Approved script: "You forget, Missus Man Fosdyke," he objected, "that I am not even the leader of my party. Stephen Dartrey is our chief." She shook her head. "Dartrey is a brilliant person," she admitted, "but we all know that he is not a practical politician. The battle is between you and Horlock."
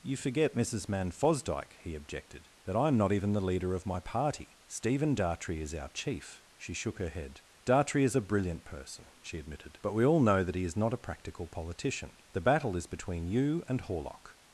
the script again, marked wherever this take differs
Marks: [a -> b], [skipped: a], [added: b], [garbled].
"You forget, Missus Man Fosdyke," he objected, "that I am not even the leader of my party. Stephen Dartrey is our chief." She shook her head. "Dartrey is a brilliant person," she admitted, "but we all know that he is not a practical politician. The battle is between you and Horlock."